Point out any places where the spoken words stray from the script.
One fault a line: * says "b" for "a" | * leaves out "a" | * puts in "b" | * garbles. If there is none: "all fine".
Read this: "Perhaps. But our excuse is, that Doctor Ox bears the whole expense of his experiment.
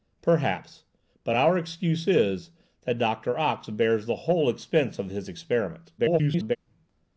* garbles